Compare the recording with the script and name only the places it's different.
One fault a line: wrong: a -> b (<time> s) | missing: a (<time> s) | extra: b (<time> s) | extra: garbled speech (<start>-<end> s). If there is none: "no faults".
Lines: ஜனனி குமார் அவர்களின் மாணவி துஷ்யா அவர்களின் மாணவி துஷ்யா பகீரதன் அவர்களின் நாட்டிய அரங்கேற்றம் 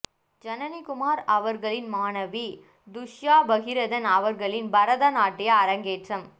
missing: அவர்களின் மாணவி துஷ்யா (3.4 s)
extra: பரத (4.7 s)